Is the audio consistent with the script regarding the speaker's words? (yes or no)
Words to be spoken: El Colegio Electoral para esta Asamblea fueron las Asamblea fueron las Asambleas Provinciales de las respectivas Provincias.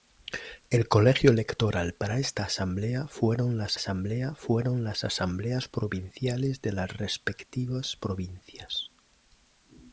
yes